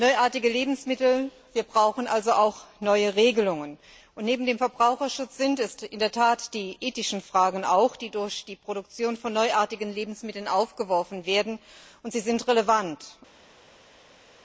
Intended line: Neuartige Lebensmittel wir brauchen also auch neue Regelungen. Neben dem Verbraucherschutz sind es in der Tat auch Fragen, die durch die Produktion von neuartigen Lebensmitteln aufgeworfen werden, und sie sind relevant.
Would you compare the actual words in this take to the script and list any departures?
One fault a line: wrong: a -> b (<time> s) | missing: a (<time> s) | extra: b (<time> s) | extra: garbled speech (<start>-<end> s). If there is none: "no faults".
extra: die ethischen (6.5 s)